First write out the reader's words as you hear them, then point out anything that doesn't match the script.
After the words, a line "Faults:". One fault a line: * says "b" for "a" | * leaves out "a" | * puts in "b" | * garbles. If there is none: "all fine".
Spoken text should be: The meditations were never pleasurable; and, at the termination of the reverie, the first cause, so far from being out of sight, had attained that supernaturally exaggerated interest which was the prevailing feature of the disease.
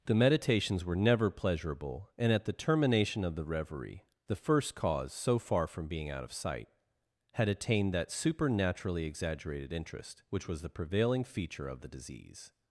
The meditations were never pleasurable; and, at the termination of the reverie, the first cause, so far from being out of sight, had attained that supernaturally exaggerated interest which was the prevailing feature of the disease.
Faults:
all fine